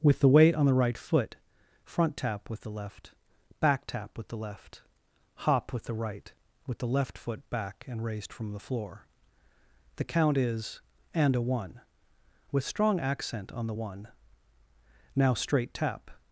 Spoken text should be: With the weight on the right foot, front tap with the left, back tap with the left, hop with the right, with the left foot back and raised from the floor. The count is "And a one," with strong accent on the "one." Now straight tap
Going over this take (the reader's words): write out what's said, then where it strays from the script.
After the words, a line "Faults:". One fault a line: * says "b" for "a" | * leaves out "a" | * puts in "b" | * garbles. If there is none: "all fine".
With the weight on the right foot, front tap with the left, back tap with the left, hop with the right, with the left foot back and raised from the floor. The count is "And a one," with strong accent on the "one." Now straight tap
Faults:
all fine